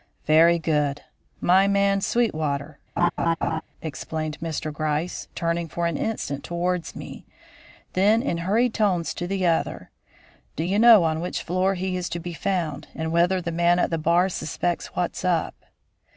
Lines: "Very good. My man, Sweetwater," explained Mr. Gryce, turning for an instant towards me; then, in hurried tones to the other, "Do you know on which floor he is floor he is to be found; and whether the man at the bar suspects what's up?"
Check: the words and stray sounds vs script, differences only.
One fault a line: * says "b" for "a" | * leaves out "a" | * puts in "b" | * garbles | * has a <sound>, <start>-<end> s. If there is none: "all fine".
* has a laugh, 3.0-3.6 s
* leaves out "floor he is"